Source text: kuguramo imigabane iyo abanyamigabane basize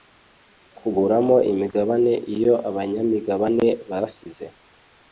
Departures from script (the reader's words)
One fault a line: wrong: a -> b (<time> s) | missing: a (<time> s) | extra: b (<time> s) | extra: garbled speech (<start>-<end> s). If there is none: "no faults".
no faults